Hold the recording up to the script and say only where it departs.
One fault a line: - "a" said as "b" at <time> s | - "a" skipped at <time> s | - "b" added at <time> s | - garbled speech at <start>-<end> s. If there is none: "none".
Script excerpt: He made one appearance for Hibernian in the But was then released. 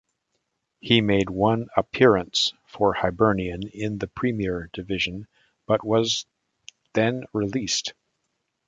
- "Premier Division" added at 4.1 s